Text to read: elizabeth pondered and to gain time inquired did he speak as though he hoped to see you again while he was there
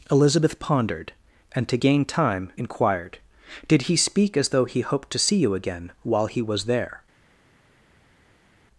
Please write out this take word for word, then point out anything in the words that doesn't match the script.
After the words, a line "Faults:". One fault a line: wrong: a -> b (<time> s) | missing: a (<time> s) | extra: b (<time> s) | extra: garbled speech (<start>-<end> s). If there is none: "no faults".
elizabeth pondered and to gain time inquired did he speak as though he hoped to see you again while he was there
Faults:
no faults